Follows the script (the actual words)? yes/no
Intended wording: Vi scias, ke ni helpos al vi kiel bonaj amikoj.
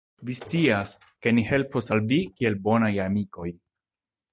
yes